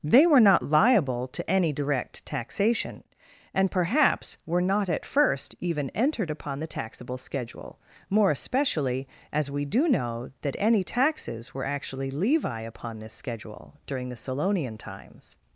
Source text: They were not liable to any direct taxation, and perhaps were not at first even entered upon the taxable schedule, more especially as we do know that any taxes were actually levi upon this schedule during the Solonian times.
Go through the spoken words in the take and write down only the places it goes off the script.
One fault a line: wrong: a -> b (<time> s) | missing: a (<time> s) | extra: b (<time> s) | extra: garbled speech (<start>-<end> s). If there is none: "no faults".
no faults